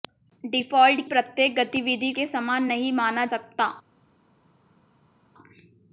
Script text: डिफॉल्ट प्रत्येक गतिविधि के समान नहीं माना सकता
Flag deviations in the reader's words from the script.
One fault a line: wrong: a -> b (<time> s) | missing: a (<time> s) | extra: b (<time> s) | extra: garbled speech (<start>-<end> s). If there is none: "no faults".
no faults